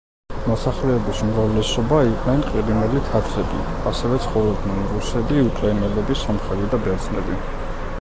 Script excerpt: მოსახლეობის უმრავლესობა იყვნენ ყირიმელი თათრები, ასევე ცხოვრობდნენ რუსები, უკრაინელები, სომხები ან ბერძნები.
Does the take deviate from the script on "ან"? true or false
true